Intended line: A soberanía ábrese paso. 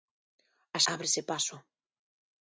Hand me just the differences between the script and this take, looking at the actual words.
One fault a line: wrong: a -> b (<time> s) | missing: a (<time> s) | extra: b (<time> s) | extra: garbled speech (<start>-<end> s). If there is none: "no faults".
missing: soberanía (0.8 s)